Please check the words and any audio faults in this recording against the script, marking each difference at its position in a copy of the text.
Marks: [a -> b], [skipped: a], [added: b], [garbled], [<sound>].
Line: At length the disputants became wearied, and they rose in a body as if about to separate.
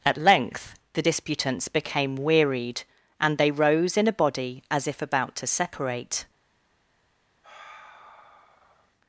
At length the disputants became wearied, and they rose in a body as if about to separate. [sigh]